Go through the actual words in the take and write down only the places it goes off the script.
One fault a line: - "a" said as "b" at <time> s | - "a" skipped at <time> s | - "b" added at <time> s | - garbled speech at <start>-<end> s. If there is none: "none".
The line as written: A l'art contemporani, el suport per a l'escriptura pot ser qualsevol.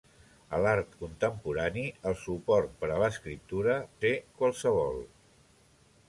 - "pot" skipped at 3.8 s